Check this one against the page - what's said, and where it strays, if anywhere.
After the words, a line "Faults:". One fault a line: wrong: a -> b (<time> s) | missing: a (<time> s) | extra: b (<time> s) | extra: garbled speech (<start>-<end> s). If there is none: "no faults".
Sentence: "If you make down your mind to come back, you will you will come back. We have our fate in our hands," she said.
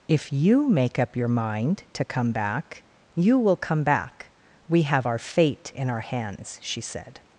"If you make up your mind to come back, you will come back. We have our fate in our hands," she said.
Faults:
wrong: down -> up (1.0 s)
missing: you will (3.5 s)